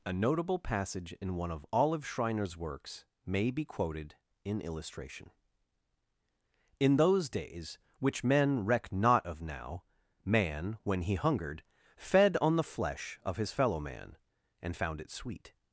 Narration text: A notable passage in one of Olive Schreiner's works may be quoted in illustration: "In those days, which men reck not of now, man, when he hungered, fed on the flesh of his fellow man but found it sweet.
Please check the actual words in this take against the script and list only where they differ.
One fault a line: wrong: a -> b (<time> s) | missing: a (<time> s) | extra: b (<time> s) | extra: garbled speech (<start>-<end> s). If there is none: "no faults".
wrong: but -> and (14.6 s)